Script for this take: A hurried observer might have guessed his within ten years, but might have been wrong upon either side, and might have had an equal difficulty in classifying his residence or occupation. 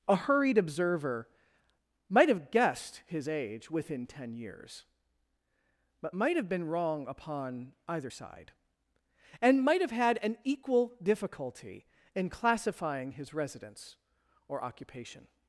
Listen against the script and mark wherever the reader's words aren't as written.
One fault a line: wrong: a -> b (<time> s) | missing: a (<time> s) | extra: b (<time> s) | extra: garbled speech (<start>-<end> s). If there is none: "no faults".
extra: age (3.3 s)